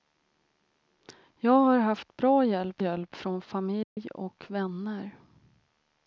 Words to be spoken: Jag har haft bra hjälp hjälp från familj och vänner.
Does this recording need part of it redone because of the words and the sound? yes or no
yes